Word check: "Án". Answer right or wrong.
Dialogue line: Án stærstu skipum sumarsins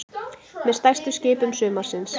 wrong